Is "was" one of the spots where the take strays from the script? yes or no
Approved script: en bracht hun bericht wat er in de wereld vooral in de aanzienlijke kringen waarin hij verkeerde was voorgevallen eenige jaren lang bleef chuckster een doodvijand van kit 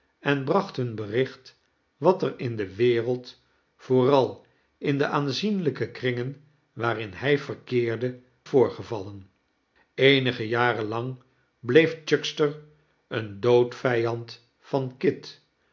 yes